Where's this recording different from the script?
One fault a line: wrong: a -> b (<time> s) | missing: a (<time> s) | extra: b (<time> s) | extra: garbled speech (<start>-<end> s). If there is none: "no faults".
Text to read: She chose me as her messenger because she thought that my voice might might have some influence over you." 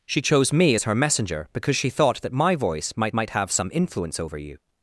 no faults